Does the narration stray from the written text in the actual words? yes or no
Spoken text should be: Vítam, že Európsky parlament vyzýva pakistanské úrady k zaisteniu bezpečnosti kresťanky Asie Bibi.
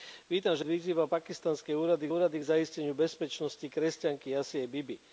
yes